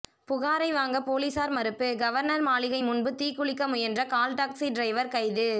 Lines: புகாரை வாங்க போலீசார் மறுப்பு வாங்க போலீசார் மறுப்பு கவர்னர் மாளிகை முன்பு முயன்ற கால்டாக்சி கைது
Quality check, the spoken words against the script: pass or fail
fail